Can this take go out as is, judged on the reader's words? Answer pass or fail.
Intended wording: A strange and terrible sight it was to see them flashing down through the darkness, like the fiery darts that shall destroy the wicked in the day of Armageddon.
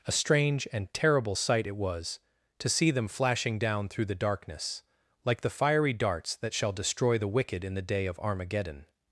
pass